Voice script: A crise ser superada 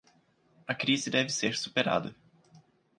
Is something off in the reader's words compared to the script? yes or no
yes